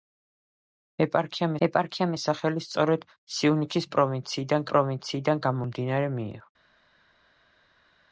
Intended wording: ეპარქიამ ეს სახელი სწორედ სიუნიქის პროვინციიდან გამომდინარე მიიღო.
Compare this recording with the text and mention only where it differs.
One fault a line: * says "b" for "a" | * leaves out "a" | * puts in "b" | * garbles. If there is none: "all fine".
* puts in "ეპარქიამ"
* puts in "პროვინციიდან"